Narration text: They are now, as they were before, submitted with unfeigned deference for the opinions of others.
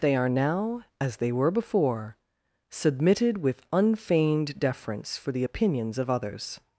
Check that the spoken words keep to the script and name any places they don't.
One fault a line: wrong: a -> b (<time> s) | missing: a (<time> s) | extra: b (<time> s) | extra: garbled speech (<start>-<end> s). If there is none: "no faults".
no faults